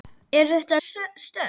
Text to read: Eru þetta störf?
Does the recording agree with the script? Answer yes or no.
yes